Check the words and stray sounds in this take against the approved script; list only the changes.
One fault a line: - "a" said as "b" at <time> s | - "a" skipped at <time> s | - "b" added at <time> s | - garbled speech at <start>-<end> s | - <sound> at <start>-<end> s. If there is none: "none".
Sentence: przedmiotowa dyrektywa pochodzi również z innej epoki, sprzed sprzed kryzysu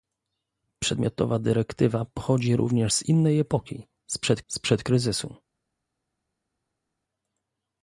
none